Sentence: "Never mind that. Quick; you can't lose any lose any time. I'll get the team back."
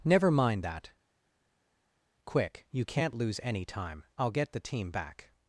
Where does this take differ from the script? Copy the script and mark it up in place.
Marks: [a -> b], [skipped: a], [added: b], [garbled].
"Never mind that. Quick; you can't lose any [skipped: lose any] time. I'll get the team back."